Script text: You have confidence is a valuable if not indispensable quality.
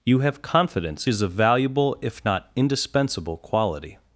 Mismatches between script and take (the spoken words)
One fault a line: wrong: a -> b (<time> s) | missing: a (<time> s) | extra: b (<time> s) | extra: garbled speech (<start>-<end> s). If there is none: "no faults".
no faults